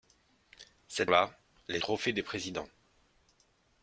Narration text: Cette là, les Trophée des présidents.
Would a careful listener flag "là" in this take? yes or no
no